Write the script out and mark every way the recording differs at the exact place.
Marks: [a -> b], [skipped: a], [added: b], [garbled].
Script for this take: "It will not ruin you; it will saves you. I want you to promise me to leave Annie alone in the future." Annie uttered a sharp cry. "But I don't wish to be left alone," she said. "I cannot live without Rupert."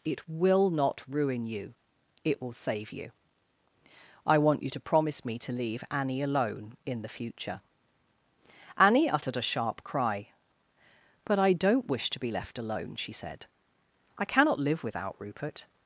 "It will not ruin you; it will [saves -> save] you. I want you to promise me to leave Annie alone in the future." Annie uttered a sharp cry. "But I don't wish to be left alone," she said. "I cannot live without Rupert."